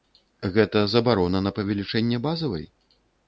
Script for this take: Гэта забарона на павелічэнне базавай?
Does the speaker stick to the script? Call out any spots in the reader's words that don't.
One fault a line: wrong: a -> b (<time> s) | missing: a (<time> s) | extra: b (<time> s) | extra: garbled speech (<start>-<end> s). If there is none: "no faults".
no faults